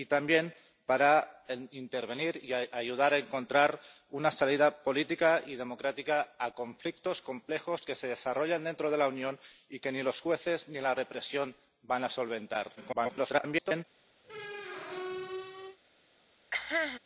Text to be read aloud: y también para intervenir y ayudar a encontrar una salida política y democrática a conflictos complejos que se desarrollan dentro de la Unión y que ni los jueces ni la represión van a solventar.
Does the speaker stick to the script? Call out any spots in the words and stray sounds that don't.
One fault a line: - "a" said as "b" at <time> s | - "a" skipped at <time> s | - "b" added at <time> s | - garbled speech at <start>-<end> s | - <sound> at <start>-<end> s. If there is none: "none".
- garbled speech at 12.8-13.8 s
- squeak at 14.2-15.8 s
- cough at 16.5-17.0 s